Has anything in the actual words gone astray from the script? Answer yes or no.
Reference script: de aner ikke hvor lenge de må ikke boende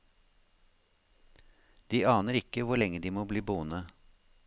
yes